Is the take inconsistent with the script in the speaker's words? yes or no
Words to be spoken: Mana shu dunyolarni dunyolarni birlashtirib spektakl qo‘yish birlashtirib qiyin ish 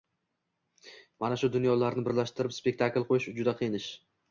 yes